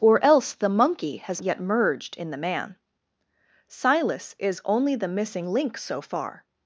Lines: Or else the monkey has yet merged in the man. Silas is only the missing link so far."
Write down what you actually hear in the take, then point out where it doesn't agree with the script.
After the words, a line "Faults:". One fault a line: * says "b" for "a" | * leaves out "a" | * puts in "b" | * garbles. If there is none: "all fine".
Or else the monkey has yet merged in the man. Silas is only the missing link so far."
Faults:
all fine